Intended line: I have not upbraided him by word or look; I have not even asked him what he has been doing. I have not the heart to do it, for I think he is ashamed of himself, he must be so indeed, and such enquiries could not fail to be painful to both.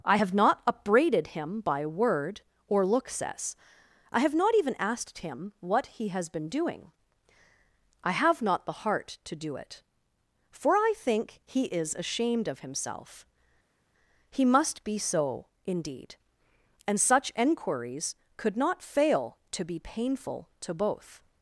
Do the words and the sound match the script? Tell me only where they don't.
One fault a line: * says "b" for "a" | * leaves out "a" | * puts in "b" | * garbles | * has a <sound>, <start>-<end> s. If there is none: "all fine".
* puts in "says"